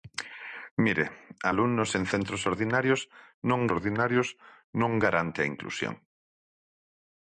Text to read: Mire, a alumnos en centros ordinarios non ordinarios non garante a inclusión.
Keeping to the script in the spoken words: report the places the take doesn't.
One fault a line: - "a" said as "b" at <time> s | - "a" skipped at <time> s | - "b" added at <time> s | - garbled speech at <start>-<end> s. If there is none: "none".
none